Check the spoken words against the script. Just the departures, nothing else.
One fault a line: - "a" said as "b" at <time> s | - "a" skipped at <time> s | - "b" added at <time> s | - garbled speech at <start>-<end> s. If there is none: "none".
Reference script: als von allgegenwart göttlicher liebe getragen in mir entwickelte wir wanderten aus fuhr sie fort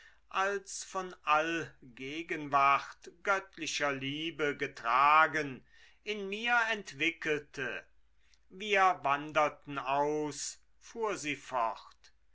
none